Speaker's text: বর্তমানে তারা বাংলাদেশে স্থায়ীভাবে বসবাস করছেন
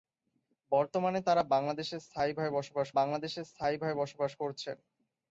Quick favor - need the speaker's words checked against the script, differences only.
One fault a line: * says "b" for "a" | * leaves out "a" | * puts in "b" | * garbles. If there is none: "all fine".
* puts in "বাংলাদেশে স্থায়ীভাবে বসবাস"